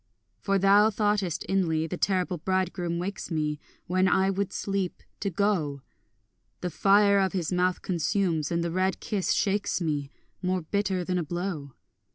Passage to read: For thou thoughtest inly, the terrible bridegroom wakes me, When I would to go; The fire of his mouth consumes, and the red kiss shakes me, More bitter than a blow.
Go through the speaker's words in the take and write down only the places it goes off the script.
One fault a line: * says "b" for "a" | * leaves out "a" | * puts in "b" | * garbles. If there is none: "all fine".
* puts in "sleep"